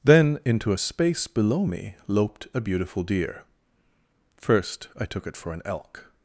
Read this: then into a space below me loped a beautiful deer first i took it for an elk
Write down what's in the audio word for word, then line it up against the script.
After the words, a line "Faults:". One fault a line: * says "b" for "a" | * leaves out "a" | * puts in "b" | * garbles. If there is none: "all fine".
then into a space below me loped a beautiful deer first i took it for an elk
Faults:
all fine